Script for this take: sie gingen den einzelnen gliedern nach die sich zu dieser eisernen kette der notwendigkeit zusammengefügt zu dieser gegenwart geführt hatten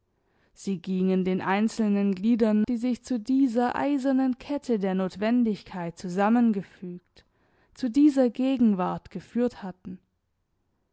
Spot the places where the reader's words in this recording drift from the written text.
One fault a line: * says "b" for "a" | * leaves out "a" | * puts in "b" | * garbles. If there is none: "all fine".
* leaves out "nach"